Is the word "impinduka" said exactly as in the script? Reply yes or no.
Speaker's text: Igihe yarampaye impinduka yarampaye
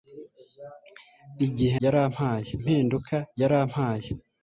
yes